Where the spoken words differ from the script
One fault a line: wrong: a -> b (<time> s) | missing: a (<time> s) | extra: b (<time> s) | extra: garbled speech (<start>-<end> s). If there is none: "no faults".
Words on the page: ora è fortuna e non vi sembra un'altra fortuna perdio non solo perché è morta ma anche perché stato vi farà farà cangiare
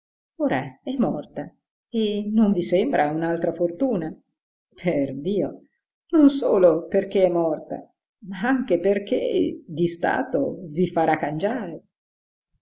wrong: fortuna -> morta (1.0 s)
extra: di (9.7 s)
missing: farà (11.2 s)